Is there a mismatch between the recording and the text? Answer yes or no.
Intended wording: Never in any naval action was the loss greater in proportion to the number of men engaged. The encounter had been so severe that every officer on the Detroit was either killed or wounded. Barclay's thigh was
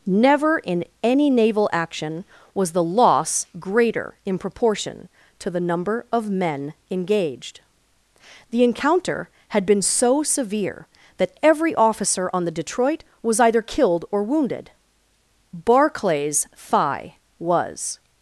no